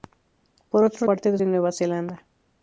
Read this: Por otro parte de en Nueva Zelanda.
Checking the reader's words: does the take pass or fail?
pass